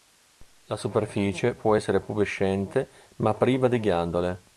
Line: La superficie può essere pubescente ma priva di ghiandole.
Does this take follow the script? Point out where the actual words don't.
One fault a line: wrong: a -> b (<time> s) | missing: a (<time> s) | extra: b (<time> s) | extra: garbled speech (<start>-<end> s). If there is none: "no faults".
no faults